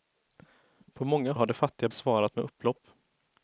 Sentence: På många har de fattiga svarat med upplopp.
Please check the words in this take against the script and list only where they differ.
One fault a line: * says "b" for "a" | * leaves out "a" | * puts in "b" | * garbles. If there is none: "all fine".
all fine